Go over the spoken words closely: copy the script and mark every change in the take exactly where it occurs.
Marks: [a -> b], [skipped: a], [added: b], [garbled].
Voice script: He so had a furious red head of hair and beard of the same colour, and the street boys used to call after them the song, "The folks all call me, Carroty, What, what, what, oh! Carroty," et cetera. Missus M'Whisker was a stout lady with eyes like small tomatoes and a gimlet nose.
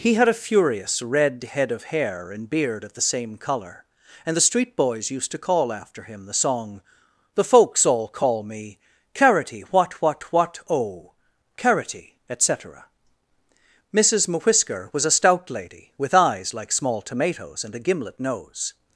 He [skipped: so] had a furious red head of hair and beard of the same colour, and the street boys used to call after [them -> him] the song, "The folks all call me, Carroty, What, what, what, oh! Carroty," et cetera. Missus M'Whisker was a stout lady with eyes like small tomatoes and a gimlet nose.